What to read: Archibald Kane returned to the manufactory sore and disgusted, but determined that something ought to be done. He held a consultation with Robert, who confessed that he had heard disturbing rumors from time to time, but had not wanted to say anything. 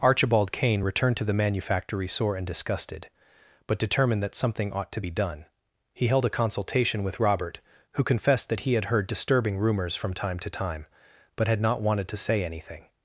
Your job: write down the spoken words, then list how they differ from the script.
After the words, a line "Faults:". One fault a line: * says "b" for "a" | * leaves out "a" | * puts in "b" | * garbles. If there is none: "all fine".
Archibald Kane returned to the manufactory sore and disgusted, but determined that something ought to be done. He held a consultation with Robert, who confessed that he had heard disturbing rumors from time to time, but had not wanted to say anything.
Faults:
all fine